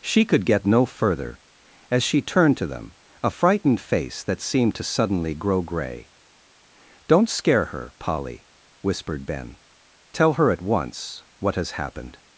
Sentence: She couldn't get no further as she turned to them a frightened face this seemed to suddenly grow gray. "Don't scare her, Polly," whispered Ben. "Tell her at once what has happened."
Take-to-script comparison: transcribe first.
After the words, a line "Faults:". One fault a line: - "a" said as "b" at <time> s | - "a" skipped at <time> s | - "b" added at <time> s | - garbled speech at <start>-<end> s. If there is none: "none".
She could get no further as she turned to them a frightened face that seemed to suddenly grow gray. "Don't scare her, Polly," whispered Ben. "Tell her at once what has happened."
Faults:
- "couldn't" said as "could" at 0.2 s
- "this" said as "that" at 4.2 s